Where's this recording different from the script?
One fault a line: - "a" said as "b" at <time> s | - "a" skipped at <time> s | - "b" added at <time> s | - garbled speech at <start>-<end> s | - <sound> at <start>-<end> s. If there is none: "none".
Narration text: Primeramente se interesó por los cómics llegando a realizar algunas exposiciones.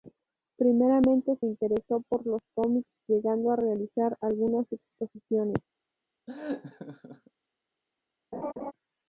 - laugh at 6.3-7.3 s
- laugh at 8.3-8.7 s